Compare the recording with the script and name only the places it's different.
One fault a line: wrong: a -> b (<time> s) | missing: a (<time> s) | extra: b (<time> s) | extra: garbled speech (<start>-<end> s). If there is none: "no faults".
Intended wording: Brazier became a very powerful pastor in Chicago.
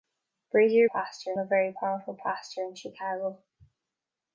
wrong: became -> pastor (0.9 s)